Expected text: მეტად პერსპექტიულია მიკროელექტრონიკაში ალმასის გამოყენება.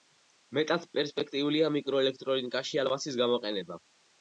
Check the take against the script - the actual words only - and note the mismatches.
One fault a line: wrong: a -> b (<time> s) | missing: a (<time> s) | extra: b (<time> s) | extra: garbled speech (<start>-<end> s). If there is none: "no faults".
no faults